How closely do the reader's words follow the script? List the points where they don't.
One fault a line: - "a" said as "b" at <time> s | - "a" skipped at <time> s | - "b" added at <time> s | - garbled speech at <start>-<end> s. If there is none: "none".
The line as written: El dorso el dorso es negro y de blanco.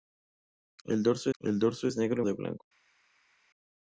none